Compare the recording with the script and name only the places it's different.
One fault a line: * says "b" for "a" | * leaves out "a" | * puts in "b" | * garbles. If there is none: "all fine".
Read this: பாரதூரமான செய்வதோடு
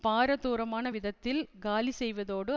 * puts in "விதத்தில் காலி"